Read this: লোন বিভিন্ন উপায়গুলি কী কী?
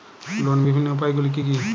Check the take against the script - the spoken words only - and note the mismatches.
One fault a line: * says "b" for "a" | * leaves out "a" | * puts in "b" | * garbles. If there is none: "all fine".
all fine